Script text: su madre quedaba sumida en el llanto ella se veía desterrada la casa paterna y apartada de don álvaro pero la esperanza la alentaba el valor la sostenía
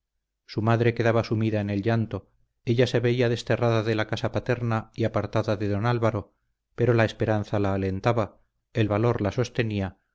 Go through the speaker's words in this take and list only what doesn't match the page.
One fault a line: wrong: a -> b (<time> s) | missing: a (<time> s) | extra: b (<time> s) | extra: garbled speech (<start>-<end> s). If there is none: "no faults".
extra: de (3.8 s)